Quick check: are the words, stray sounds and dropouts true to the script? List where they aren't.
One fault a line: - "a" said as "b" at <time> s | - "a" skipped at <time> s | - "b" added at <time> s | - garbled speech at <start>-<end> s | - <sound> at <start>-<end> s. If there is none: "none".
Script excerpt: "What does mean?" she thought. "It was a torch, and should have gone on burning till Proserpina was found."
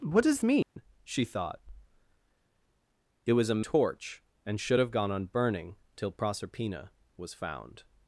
- dropout at 0.6-0.8 s